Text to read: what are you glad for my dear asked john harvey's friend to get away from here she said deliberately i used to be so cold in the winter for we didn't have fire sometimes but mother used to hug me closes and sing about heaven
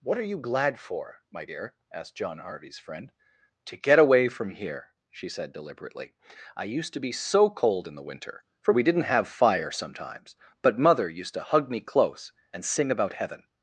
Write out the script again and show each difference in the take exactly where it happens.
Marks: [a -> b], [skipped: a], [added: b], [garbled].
what are you glad for my dear asked john harvey's friend to get away from here she said deliberately i used to be so cold in the winter for we didn't have fire sometimes but mother used to hug me [closes -> close] and sing about heaven